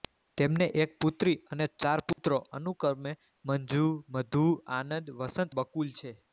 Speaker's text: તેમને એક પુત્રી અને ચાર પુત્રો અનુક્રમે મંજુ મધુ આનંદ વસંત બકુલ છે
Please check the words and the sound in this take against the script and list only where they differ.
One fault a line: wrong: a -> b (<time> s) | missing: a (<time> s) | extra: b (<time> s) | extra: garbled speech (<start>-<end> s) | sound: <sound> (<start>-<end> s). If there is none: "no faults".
sound: dropout (2.1-2.2 s)